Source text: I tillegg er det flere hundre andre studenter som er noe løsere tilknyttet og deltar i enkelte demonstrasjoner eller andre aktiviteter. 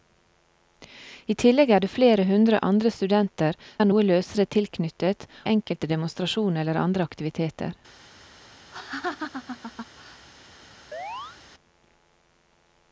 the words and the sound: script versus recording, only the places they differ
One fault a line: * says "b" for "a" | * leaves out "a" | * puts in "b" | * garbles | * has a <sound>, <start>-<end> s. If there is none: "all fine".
* leaves out "som"
* leaves out "og deltar"
* has a laugh, 8.7-10.3 s
* has a chirp, 10.9-11.4 s